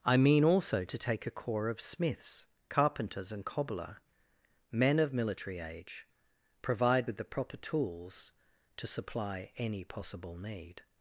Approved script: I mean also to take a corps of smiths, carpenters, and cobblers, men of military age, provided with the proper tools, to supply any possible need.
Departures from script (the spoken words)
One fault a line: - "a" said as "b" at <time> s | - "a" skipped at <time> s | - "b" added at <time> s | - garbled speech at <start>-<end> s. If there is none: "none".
- "cobblers" said as "cobbler" at 3.5 s
- "provided" said as "provide" at 6.6 s